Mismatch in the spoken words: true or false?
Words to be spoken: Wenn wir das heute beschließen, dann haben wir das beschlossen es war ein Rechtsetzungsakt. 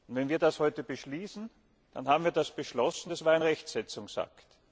false